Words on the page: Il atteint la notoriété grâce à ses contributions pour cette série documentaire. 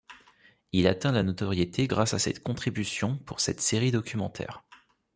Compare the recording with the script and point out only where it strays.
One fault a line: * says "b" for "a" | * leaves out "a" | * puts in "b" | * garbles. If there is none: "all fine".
all fine